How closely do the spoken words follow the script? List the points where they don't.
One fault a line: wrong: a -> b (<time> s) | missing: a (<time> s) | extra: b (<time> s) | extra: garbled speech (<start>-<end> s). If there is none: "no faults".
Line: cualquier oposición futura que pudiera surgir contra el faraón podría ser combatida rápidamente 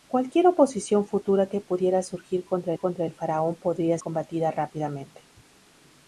extra: contra (2.7 s)
missing: ser (4.0 s)